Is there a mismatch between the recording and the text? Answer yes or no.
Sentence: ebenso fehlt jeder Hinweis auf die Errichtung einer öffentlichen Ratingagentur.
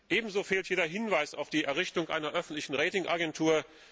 no